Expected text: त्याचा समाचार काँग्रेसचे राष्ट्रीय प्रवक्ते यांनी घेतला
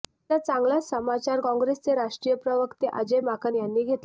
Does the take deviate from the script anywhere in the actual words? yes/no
yes